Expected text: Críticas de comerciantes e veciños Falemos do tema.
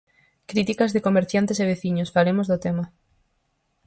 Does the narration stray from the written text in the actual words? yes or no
no